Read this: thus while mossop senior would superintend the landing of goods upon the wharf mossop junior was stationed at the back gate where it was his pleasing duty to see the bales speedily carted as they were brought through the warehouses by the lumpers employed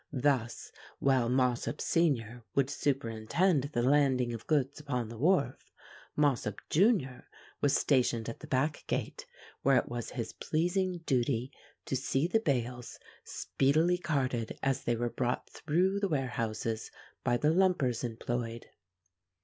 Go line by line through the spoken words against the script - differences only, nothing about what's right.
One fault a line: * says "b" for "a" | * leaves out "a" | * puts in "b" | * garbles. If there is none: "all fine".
all fine